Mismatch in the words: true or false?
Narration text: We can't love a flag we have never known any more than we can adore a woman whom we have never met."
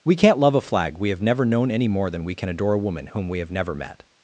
false